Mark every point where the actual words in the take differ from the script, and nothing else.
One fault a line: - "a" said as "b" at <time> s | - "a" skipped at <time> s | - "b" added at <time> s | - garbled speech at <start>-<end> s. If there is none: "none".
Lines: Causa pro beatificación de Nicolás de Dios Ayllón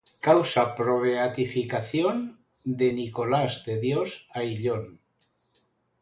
none